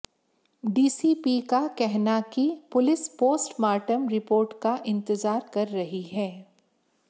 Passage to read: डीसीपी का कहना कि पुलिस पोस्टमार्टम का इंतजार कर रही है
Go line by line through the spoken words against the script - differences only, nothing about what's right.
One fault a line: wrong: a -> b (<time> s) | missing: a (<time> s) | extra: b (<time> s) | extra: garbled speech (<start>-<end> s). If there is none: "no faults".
extra: रिपोर्ट (4.1 s)